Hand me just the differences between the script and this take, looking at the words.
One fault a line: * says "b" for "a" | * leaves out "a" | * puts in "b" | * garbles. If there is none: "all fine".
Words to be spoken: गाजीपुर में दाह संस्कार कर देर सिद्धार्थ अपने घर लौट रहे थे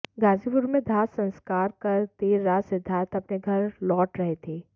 * puts in "रात"